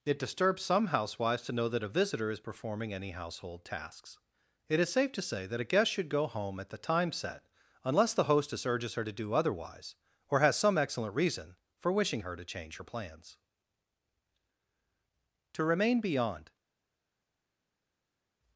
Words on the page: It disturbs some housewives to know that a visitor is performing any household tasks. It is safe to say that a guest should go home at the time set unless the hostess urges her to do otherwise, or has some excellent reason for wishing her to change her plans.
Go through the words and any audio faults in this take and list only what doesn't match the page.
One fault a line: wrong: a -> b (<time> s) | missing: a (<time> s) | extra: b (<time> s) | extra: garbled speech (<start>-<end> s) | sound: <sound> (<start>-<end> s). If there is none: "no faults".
extra: To remain beyond (15.5 s)